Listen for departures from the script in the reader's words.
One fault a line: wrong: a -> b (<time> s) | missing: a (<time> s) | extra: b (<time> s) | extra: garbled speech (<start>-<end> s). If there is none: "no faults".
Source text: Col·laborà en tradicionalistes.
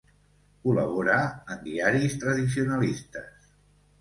extra: diaris (1.6 s)